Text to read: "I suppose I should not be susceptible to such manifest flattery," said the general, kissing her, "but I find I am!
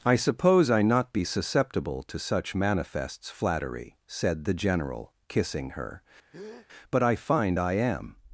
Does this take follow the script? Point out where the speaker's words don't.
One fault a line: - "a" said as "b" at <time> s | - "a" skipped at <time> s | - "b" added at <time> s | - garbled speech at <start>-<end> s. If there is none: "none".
- "should" skipped at 0.8 s
- "manifest" said as "manifests" at 2.6 s